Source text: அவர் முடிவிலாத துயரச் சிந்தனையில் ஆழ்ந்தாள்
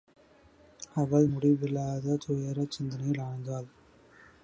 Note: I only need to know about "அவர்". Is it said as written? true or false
false